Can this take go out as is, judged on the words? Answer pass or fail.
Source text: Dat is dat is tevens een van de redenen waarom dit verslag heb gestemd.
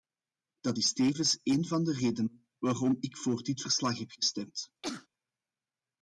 fail